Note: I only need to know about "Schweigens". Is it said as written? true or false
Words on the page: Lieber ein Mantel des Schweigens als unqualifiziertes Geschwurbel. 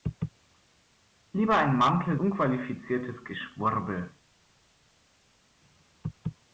false